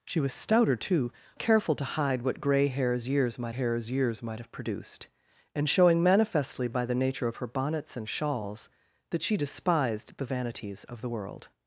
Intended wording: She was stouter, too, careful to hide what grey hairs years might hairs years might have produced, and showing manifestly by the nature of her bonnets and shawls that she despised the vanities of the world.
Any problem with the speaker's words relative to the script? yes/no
no